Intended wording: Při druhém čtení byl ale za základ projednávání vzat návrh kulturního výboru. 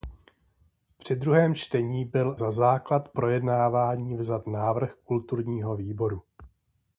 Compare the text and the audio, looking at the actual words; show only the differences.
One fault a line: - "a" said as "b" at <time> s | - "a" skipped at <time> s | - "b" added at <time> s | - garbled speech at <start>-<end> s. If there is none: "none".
- "ale" skipped at 2.4 s